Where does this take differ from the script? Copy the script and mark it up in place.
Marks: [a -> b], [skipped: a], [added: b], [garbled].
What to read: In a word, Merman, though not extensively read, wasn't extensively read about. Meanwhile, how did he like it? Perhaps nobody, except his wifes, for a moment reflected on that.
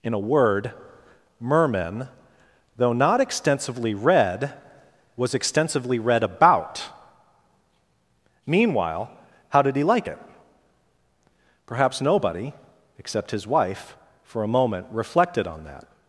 In a word, Merman, though not extensively read, [wasn't -> was] extensively read about. Meanwhile, how did he like it? Perhaps nobody, except his [wifes, -> wife] for a moment reflected on that.